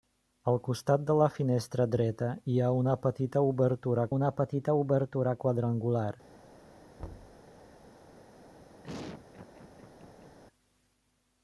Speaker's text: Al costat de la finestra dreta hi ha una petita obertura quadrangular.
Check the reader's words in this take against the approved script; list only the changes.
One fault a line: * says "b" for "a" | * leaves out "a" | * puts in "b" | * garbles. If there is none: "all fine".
* puts in "una petita obertura"